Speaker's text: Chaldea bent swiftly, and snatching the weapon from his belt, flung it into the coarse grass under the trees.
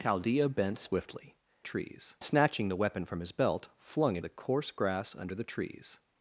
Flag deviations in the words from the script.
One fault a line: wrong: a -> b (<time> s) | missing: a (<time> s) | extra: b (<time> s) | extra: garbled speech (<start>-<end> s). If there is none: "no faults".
wrong: and -> trees (1.6 s)
missing: into (4.2 s)